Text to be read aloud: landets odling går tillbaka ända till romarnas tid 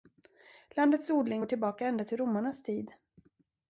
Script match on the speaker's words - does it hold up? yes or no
yes